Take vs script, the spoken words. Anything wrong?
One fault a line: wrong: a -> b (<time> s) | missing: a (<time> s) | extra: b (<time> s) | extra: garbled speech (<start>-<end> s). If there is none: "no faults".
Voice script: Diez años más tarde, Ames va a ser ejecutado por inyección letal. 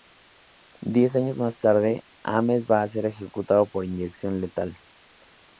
no faults